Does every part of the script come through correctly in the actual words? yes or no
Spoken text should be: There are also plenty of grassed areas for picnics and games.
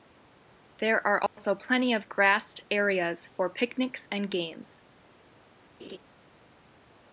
yes